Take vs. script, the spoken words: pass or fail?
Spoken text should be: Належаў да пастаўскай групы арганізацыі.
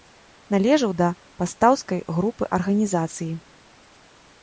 pass